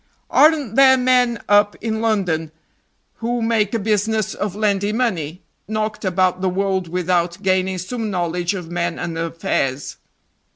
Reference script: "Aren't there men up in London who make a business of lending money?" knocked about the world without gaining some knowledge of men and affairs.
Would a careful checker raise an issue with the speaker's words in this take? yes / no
no